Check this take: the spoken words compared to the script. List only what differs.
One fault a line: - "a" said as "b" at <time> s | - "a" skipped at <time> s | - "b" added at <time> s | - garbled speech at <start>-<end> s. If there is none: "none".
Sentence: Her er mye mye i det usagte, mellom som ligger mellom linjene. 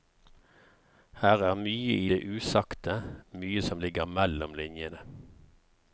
- "mye" skipped at 2.0 s
- "mellom" said as "mye" at 3.3 s